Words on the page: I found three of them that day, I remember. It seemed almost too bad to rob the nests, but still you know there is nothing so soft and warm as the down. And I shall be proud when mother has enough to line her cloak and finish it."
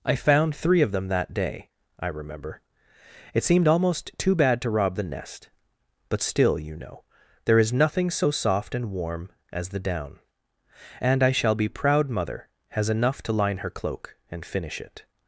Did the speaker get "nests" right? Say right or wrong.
wrong